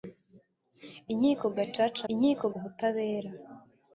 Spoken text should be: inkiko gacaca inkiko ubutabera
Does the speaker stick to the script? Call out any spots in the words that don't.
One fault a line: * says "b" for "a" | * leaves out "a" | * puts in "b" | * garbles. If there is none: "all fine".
all fine